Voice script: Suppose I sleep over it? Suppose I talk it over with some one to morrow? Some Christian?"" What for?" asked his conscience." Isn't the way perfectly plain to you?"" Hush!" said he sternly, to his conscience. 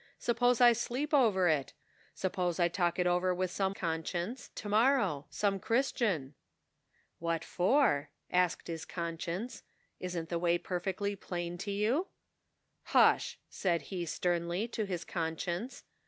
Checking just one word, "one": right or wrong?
wrong